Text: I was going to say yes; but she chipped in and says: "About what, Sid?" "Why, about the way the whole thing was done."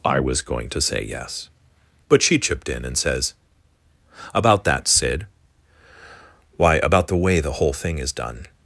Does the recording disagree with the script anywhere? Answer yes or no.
yes